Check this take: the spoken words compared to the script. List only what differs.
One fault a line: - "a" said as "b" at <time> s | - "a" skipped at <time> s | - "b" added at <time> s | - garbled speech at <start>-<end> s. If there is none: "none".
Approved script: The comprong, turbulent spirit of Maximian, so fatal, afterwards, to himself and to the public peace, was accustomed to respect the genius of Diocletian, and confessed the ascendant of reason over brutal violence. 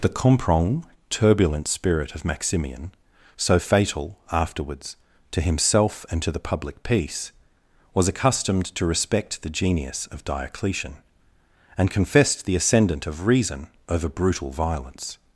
none